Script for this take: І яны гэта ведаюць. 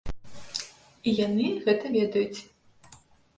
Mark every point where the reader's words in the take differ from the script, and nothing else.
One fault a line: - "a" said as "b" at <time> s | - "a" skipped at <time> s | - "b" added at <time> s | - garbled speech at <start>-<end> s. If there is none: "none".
none